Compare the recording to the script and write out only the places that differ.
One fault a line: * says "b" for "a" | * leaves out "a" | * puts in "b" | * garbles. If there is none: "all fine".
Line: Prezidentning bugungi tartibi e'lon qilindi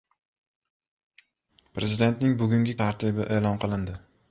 all fine